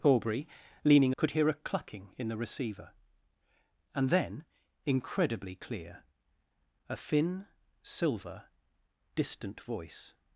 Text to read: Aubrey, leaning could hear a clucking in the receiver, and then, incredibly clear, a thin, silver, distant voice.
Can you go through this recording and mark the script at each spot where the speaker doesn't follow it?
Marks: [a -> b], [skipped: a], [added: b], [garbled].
Aubrey, leaning could hear a clucking in the receiver, and then, incredibly clear, a thin, silver, distant voice.